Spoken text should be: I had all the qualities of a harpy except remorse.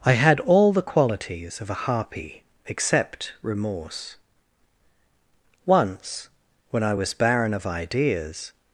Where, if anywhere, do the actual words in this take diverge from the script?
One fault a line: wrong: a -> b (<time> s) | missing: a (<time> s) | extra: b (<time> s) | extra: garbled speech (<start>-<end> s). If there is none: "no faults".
extra: Once when I was barren of ideas (5.7 s)